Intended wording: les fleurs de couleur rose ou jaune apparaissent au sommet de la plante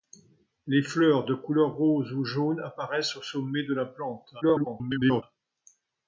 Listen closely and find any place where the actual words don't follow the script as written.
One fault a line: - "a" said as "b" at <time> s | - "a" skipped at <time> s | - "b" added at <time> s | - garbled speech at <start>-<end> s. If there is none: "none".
- garbled speech at 4.4-5.2 s